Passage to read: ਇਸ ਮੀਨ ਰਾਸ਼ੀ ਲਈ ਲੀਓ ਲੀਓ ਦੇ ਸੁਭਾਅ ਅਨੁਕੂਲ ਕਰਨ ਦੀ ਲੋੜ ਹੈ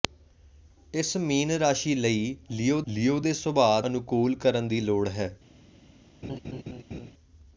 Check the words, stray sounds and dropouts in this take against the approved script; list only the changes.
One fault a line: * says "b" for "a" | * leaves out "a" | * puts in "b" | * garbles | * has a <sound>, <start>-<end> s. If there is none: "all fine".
* has a laugh, 6.2-7.1 s